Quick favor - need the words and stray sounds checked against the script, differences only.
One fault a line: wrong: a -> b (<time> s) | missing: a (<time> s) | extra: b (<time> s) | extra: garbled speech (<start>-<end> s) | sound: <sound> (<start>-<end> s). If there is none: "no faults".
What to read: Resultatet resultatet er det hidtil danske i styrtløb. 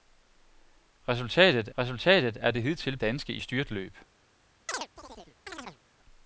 sound: chirp (4.7-5.8 s)